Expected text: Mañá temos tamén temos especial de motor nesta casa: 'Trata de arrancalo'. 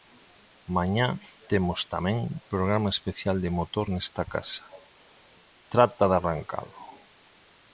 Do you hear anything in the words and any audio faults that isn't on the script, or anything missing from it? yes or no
yes